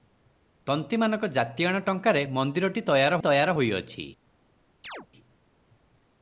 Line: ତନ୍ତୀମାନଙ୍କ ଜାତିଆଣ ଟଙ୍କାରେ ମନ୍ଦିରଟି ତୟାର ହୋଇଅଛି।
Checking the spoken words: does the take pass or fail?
fail